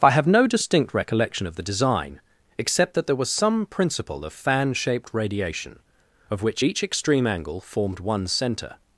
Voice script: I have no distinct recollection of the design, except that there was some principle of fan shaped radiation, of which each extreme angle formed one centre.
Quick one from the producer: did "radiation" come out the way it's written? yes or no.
yes